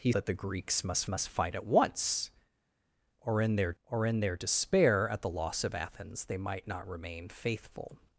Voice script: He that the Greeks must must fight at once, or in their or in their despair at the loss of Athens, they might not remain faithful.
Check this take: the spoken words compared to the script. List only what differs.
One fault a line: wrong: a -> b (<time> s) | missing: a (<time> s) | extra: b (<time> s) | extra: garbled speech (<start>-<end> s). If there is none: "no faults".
no faults